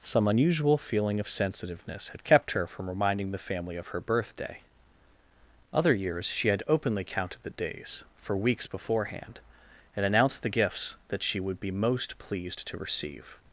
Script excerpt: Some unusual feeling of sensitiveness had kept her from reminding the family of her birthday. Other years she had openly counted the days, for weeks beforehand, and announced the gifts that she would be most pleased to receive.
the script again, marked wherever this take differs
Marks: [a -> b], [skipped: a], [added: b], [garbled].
Some unusual feeling of sensitiveness had kept her from reminding the family of her birthday. Other years she had openly counted the days, for weeks beforehand, and announced the gifts that she would be most pleased to receive.